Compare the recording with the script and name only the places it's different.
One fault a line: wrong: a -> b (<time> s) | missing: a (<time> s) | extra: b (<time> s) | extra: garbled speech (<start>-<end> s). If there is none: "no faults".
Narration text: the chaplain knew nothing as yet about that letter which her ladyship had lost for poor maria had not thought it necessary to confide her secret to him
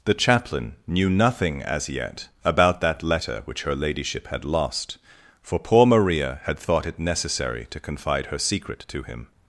missing: not (6.6 s)